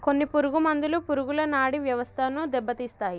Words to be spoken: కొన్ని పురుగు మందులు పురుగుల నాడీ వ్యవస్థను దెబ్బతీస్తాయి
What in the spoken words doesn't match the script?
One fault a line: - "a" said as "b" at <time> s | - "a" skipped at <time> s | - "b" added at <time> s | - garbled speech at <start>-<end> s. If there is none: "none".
none